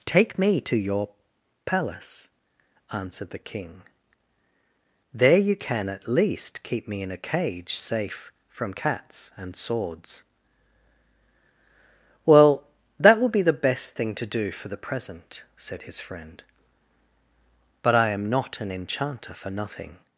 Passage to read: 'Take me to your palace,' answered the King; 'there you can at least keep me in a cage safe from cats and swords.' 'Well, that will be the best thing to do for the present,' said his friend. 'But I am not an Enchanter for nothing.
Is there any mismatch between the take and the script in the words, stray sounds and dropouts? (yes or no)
no